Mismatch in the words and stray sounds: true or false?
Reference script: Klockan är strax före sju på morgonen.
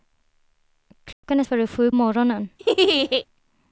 true